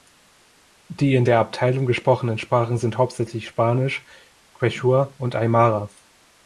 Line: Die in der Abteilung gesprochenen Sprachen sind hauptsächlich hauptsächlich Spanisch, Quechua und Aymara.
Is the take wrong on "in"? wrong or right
right